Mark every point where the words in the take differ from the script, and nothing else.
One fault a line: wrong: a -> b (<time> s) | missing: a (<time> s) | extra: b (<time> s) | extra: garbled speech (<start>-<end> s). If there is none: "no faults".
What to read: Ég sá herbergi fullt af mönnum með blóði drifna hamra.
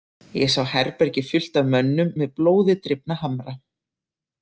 no faults